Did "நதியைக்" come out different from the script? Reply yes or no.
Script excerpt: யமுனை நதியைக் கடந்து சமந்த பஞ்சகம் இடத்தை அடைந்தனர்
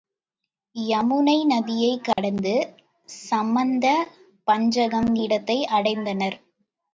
no